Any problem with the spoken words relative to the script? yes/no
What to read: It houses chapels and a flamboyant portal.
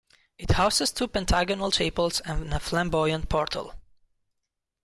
yes